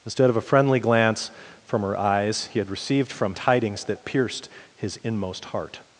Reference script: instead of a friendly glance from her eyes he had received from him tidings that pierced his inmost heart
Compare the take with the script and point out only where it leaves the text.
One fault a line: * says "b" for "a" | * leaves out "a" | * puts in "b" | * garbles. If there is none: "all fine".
* leaves out "him"